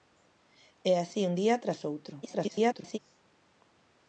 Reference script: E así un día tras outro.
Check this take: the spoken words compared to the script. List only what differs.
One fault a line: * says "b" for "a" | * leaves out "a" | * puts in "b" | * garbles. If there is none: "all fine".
* garbles